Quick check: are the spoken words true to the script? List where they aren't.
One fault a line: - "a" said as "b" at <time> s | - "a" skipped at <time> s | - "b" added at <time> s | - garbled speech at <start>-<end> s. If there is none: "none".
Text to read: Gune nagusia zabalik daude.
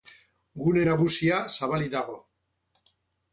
- "daude" said as "dago" at 2.0 s